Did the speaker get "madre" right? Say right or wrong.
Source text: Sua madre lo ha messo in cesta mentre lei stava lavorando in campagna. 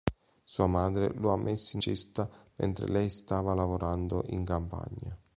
right